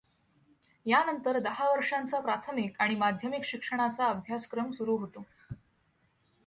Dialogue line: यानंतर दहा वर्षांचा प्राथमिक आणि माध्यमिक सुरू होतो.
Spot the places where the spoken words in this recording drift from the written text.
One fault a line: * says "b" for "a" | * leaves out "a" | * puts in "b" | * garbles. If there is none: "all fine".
* puts in "शिक्षणाचा अभ्यासक्रम"